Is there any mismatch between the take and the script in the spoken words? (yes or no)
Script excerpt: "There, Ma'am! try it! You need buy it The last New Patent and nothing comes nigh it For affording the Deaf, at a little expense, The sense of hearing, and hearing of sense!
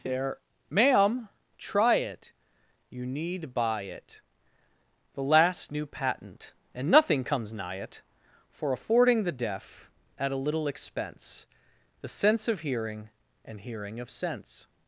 no